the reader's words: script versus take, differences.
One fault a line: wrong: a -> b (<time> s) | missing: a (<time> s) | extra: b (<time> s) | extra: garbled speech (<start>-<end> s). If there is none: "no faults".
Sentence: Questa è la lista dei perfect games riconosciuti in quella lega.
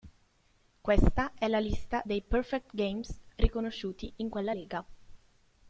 no faults